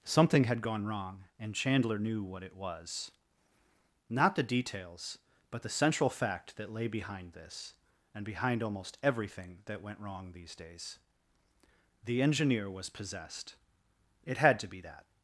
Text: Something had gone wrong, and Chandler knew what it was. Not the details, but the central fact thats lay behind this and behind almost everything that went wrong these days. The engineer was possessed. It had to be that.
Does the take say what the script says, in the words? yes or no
no